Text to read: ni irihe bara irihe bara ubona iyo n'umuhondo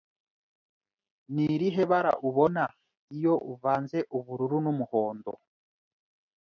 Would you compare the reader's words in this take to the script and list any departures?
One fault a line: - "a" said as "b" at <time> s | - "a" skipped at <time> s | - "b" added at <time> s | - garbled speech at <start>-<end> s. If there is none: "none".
- "irihe bara ubona iyo" said as "ubona iyo uvanze ubururu" at 2.3 s